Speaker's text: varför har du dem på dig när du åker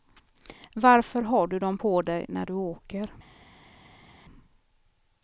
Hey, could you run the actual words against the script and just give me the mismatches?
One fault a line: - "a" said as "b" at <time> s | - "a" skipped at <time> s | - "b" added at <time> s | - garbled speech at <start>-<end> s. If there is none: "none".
none